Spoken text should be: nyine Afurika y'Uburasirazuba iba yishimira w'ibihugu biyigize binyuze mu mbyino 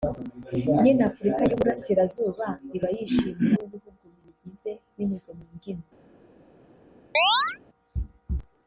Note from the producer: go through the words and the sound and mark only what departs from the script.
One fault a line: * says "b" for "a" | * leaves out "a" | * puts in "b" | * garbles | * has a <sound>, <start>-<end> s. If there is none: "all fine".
* has a chirp, 7.1-7.6 s